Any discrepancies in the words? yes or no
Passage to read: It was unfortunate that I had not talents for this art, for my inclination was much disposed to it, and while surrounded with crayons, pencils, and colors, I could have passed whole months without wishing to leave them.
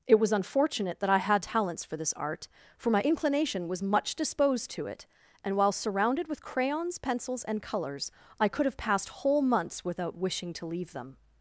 yes